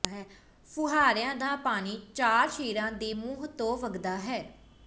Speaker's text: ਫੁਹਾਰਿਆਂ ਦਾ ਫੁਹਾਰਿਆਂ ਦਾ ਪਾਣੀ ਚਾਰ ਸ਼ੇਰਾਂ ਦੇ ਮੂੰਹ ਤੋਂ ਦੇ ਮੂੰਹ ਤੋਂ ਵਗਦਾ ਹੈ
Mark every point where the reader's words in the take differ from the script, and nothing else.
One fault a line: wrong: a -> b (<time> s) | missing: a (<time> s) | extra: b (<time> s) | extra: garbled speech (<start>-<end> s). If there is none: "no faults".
missing: ਫੁਹਾਰਿਆਂ ਦਾ (1.6 s)
missing: ਦੇ ਮੂੰਹ ਤੋਂ (3.8 s)